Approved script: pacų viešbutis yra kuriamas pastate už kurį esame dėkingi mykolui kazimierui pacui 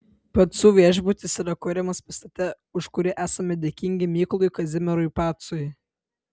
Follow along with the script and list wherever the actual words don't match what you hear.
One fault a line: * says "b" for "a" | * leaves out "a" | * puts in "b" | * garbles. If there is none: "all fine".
all fine